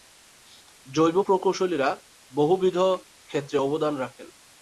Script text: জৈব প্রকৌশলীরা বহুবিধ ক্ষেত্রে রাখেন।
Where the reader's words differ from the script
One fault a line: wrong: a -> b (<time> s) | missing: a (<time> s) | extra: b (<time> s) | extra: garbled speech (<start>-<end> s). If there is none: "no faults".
extra: অবদান (3.6 s)